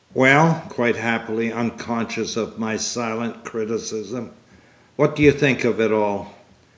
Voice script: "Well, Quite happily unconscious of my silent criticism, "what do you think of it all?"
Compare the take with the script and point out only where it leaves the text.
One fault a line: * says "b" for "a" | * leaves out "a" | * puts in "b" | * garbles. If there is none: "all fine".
all fine